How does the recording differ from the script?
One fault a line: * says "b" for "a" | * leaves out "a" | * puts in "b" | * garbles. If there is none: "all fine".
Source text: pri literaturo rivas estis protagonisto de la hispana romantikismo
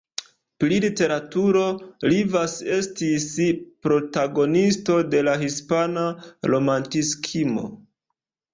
all fine